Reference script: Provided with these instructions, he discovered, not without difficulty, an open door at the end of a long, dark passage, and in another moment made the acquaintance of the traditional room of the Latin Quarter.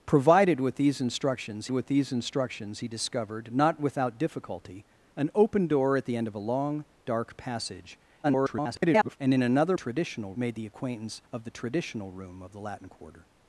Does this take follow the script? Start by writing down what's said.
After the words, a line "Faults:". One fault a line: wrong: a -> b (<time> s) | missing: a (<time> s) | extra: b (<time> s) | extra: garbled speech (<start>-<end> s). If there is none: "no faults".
Provided with these instructions with these instructions, he discovered, not without difficulty, an open door at the end of a long, dark passage, [garbled] and in another traditional made the acquaintance of the traditional room of the Latin Quarter.
Faults:
extra: with these instructions (1.7 s)
extra: garbled speech (8.2-9.2 s)
wrong: moment -> traditional (9.7 s)